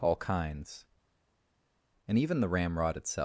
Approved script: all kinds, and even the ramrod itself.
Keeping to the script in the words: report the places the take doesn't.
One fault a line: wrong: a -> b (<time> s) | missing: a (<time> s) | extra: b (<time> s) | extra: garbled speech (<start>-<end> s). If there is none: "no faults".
no faults